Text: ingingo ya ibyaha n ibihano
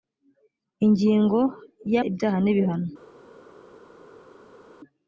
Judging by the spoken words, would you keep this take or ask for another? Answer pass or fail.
pass